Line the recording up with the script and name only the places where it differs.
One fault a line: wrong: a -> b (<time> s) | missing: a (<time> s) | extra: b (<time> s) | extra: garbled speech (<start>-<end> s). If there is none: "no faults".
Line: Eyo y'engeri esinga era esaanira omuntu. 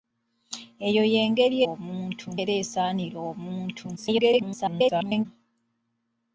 wrong: esinga -> omuntu (1.7 s)
extra: garbled speech (4.0-5.3 s)